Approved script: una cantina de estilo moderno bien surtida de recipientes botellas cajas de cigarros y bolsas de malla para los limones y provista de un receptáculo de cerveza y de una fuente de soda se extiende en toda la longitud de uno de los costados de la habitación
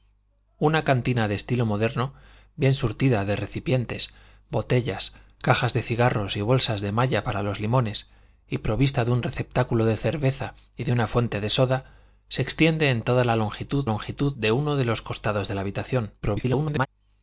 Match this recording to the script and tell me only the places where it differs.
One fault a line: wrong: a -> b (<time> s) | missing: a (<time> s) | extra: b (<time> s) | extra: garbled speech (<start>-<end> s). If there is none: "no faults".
extra: longitud (13.8 s)
extra: garbled speech (16.2-16.9 s)